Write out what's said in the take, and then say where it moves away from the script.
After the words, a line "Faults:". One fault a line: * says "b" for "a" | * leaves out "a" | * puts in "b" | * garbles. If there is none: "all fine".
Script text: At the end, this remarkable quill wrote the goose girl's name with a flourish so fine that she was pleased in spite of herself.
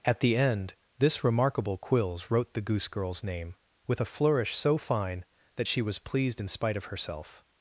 At the end, this remarkable quills wrote the goose girl's name with a flourish so fine that she was pleased in spite of herself.
Faults:
* says "quills" for "quill"